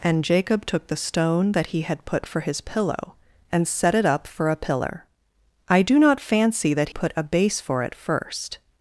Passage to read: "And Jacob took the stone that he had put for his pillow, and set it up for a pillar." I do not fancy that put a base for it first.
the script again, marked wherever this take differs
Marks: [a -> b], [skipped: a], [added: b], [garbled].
"And Jacob took the stone that he had put for his pillow, and set it up for a pillar." I do not fancy that put a base for it first.